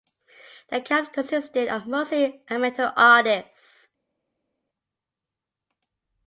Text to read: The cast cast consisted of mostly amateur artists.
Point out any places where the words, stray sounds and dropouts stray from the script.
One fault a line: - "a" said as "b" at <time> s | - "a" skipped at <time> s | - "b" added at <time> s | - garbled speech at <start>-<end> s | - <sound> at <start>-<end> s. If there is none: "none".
- "cast" skipped at 1.1 s